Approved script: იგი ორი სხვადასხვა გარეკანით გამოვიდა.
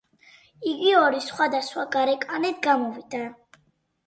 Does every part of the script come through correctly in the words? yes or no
yes